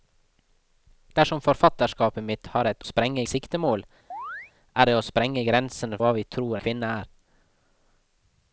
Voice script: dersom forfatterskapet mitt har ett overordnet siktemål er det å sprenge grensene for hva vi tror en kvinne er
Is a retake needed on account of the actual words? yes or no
yes